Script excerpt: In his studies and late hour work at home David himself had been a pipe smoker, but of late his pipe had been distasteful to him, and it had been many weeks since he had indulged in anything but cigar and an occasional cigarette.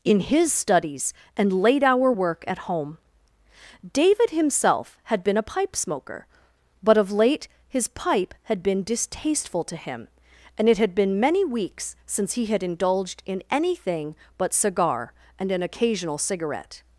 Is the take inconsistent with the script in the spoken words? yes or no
no